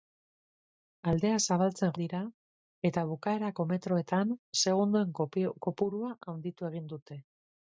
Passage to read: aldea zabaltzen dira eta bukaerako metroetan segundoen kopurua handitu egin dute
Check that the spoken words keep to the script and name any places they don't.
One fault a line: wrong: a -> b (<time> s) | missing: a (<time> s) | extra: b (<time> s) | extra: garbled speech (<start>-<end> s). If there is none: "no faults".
no faults